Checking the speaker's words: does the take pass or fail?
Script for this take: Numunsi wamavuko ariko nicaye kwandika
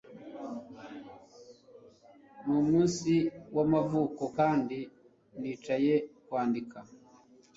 fail